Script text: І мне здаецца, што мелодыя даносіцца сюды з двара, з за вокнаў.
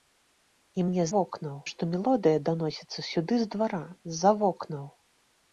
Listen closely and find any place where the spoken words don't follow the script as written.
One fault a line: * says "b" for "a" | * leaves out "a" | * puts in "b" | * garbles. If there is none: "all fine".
* says "вокнаў" for "здаецца"